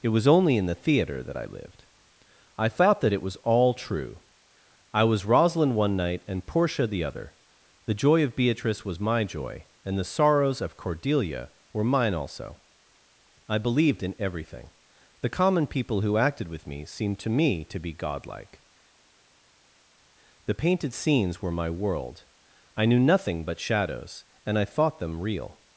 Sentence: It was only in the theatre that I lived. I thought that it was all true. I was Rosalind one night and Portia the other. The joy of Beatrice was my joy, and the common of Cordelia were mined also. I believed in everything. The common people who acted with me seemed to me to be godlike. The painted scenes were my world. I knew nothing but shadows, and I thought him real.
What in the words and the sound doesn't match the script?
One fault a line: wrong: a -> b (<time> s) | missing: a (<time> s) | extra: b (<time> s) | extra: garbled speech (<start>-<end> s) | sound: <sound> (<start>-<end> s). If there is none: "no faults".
wrong: common -> sorrows (10.0 s)
wrong: mined -> mine (11.8 s)
wrong: him -> them (25.0 s)